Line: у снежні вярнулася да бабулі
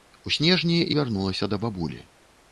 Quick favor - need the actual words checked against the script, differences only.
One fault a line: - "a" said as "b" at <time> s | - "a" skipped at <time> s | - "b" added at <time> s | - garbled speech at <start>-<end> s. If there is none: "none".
none